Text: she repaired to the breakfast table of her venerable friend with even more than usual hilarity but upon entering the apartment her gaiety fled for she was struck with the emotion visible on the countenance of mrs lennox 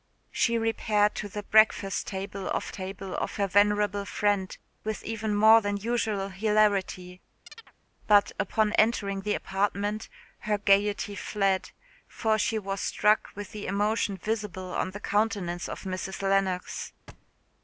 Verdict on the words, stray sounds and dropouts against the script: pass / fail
fail